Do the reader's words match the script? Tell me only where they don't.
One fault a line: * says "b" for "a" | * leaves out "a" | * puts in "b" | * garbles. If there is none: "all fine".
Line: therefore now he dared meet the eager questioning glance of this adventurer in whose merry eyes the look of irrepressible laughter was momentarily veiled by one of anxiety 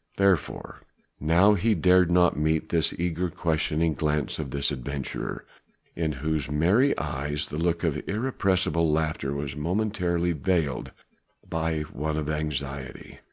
* puts in "not"